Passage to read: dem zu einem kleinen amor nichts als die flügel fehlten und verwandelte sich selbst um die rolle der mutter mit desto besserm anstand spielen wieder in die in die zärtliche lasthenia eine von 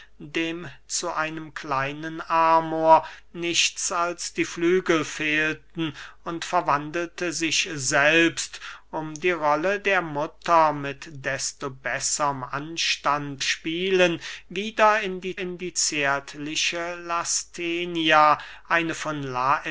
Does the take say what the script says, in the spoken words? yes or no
yes